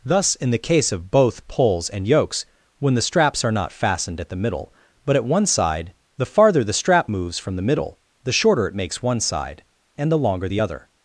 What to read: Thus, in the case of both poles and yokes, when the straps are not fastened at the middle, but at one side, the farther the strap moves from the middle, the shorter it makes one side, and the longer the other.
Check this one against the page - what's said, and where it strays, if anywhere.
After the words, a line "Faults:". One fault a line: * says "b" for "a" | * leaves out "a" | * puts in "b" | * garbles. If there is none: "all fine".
Thus, in the case of both poles and yokes, when the straps are not fastened at the middle, but at one side, the farther the strap moves from the middle, the shorter it makes one side, and the longer the other.
Faults:
all fine